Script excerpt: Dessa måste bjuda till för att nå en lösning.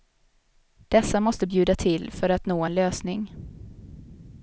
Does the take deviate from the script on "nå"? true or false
false